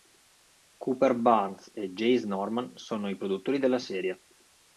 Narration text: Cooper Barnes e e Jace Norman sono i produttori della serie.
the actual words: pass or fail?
fail